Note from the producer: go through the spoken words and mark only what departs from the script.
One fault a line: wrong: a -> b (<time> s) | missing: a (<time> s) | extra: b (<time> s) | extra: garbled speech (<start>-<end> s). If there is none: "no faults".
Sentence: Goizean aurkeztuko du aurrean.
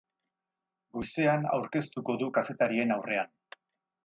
extra: kazetarien (2.4 s)